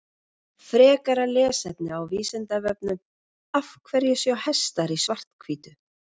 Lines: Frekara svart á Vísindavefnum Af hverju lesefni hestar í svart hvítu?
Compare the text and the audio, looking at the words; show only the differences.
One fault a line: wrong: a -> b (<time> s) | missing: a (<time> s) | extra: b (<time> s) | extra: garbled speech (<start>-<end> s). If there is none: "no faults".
wrong: svart -> lesefni (1.3 s)
wrong: lesefni -> sjá (4.2 s)